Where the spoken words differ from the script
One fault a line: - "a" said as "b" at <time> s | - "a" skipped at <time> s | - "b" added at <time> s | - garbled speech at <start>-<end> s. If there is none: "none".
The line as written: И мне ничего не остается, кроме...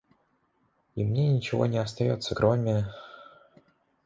none